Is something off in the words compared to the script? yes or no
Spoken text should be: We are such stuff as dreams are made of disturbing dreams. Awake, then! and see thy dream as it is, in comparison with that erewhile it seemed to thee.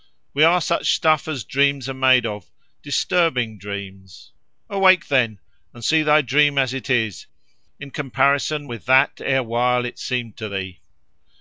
no